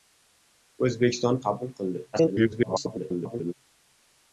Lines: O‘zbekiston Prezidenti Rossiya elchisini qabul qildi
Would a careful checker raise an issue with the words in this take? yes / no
yes